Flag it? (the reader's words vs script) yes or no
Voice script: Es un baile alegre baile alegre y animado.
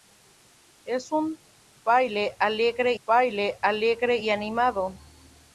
no